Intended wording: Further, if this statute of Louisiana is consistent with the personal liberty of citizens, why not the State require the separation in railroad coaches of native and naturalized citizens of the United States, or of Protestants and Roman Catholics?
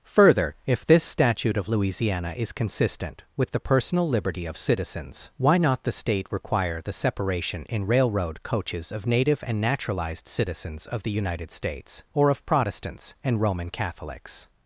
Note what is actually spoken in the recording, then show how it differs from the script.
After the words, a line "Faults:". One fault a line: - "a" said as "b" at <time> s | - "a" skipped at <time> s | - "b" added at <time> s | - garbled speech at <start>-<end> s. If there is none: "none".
Further, if this statute of Louisiana is consistent with the personal liberty of citizens, why not the State require the separation in railroad coaches of native and naturalized citizens of the United States, or of Protestants and Roman Catholics?
Faults:
none